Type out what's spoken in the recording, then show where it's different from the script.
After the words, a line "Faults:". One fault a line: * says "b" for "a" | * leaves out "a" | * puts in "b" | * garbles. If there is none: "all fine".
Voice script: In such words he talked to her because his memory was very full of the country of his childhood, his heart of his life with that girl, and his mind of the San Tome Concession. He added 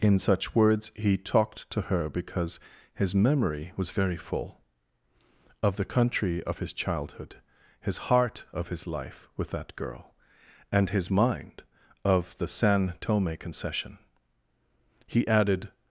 In such words he talked to her because his memory was very full of the country of his childhood, his heart of his life with that girl, and his mind of the San Tome Concession. He added
Faults:
all fine